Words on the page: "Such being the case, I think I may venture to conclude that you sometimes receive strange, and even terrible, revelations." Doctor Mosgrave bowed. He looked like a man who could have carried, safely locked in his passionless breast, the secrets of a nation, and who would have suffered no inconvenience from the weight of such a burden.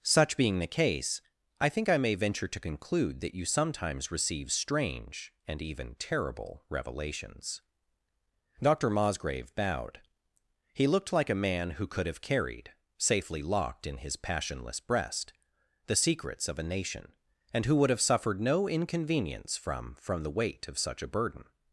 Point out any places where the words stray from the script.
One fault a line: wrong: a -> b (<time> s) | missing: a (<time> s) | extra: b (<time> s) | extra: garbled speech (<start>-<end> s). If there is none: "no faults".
extra: from (20.0 s)